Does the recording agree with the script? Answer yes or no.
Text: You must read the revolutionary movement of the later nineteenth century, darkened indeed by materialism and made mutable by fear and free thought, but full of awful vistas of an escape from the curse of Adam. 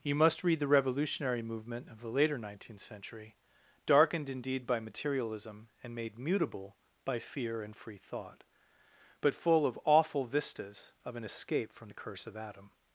yes